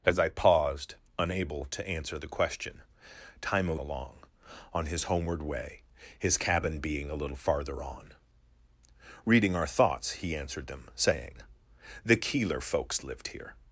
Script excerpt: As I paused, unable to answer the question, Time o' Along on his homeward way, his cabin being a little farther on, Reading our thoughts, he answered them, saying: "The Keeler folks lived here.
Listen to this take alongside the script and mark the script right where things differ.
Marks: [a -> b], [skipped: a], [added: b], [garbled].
As I paused, unable to answer the question, Time o' Along on his homeward way, his cabin being a little farther on, Reading our thoughts, he answered them, saying: "The Keeler folks lived here.